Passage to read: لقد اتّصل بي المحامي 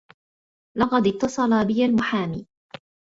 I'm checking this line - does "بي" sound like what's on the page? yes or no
yes